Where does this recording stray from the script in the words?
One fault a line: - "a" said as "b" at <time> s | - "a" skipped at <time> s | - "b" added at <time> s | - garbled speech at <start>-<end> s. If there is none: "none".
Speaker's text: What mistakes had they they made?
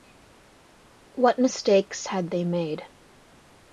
- "they" skipped at 2.4 s